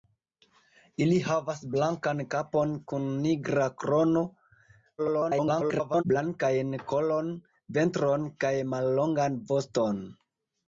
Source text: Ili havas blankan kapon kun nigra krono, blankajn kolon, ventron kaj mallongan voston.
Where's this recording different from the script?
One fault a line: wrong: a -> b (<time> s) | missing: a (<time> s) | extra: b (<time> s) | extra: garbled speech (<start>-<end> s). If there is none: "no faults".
extra: garbled speech (5.0-6.0 s)